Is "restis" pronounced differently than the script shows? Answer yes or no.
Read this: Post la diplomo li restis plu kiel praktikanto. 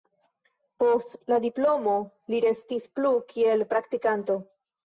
no